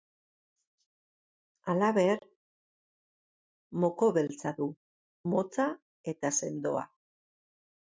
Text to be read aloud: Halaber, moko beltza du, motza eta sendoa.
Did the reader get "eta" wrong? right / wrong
right